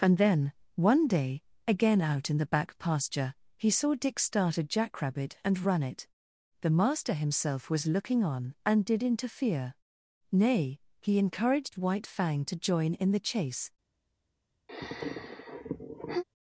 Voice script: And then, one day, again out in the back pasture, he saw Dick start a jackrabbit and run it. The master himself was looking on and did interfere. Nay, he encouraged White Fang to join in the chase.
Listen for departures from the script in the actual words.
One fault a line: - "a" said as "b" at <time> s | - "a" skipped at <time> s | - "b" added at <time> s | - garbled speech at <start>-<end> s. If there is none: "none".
none